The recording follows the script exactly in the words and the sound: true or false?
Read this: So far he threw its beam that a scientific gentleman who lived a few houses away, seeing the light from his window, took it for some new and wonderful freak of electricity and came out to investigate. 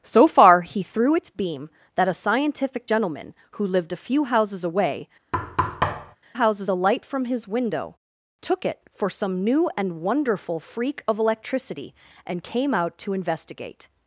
false